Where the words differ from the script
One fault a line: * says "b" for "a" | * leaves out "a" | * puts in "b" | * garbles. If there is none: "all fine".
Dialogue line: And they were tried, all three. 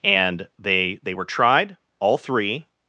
* puts in "they"